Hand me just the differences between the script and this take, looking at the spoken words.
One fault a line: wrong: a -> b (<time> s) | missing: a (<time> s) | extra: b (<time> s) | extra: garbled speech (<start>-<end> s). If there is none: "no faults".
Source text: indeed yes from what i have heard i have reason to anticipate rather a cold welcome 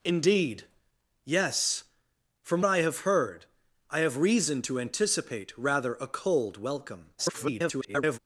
missing: what (2.6 s)
extra: garbled speech (7.2-8.2 s)